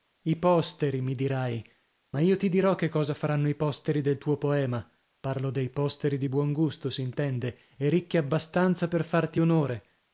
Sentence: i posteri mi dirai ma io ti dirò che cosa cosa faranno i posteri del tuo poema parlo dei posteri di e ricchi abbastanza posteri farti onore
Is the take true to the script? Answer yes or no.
no